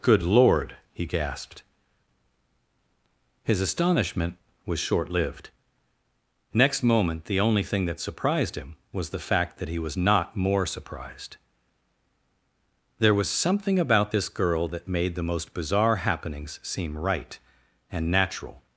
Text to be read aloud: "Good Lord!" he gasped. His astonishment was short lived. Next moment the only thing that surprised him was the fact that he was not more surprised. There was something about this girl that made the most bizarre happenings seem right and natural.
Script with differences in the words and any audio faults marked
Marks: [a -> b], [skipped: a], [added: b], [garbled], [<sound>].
"Good Lord!" he gasped. His astonishment was short lived. Next moment the only thing that surprised him was the fact that he was not more surprised. There was something about this girl that made the most bizarre happenings seem right and natural.